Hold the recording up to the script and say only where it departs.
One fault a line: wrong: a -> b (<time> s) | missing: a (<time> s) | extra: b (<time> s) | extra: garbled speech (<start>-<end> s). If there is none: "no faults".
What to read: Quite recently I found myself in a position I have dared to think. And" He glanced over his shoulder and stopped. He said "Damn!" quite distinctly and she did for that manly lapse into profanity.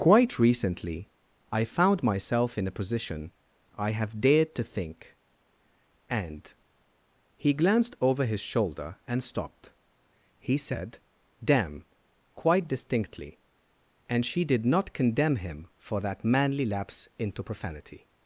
extra: not condemn him (14.7 s)